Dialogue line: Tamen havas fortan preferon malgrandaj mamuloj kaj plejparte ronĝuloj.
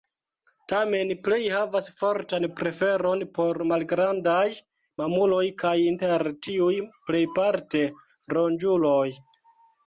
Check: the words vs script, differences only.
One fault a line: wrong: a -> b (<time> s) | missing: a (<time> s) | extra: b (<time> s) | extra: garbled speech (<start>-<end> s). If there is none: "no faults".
extra: plej (1.2 s)
extra: por (3.4 s)
extra: inter tiuj (5.9 s)